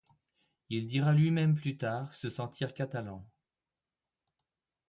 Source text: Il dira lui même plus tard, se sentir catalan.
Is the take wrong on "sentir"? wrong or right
right